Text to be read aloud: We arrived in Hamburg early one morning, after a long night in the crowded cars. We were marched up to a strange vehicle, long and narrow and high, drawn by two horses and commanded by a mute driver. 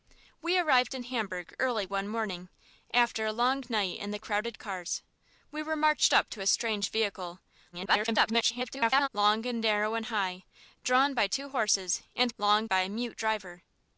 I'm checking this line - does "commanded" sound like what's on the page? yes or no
no